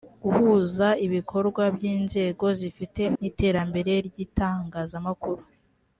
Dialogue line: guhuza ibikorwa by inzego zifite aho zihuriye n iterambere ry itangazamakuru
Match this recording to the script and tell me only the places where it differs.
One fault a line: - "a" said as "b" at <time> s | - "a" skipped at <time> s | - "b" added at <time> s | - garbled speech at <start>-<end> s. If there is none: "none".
- "aho zihuriye" skipped at 3.0 s